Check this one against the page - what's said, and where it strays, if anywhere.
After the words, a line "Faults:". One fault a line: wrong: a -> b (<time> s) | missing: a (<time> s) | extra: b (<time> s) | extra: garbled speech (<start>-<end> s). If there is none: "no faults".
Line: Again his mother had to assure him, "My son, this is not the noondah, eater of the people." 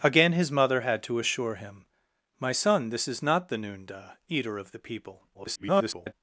Again his mother had to assure him, "My son, this is not the noondah, eater of the people." [garbled]
Faults:
extra: garbled speech (5.3-6.1 s)